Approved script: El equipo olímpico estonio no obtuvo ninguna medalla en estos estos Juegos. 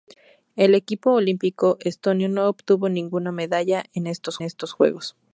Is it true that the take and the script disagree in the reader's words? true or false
false